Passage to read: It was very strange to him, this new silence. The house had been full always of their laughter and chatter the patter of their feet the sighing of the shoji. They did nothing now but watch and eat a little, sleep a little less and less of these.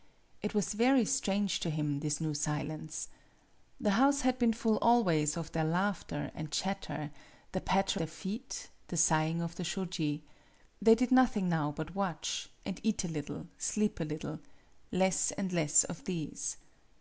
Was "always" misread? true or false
false